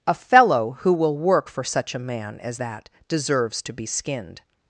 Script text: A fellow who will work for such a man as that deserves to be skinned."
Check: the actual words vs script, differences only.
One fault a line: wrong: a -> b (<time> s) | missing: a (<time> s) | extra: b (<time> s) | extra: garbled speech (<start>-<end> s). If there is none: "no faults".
no faults